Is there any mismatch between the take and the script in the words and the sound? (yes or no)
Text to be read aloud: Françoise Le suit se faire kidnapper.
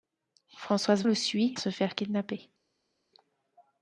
no